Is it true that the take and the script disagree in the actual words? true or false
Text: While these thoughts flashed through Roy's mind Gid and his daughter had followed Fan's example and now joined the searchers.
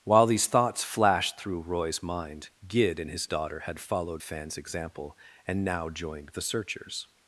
false